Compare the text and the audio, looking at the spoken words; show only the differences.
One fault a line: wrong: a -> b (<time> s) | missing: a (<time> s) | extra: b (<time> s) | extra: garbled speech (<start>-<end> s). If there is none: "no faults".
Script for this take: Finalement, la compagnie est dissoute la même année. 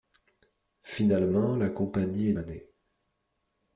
missing: dissoute la même (2.3 s)